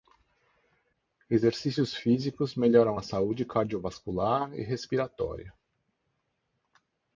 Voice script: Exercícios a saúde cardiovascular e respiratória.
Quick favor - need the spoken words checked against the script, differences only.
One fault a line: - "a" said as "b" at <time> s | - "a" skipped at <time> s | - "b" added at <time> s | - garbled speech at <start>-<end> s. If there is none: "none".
- "físicos melhoram" added at 1.9 s